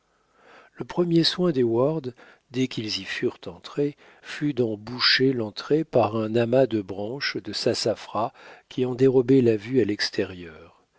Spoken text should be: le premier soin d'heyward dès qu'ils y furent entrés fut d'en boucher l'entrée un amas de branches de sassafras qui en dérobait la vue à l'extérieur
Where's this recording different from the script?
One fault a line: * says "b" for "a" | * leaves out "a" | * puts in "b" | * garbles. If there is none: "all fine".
* puts in "par"